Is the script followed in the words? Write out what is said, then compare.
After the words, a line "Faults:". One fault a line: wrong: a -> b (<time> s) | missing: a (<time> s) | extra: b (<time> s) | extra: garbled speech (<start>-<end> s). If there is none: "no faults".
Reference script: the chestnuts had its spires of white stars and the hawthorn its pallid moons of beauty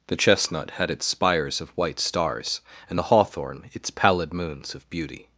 the chestnut had its spires of white stars and the hawthorn its pallid moons of beauty
Faults:
wrong: chestnuts -> chestnut (0.1 s)